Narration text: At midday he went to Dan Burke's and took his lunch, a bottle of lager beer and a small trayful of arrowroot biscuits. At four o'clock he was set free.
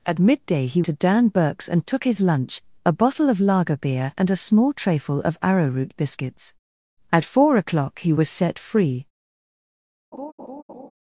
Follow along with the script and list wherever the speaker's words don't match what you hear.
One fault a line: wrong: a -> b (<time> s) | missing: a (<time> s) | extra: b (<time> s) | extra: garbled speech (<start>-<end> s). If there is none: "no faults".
missing: went (0.8 s)